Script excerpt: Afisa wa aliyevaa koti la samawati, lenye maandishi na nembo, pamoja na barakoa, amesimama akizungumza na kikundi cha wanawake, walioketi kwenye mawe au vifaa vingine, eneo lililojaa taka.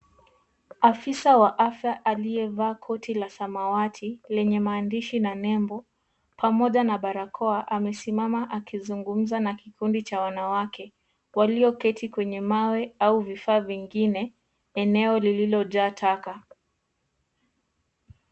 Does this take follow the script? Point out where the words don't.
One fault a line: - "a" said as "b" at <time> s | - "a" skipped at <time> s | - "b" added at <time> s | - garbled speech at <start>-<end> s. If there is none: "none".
- "afya" added at 1.6 s